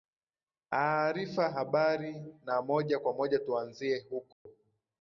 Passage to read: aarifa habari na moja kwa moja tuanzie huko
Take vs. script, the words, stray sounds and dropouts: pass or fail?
fail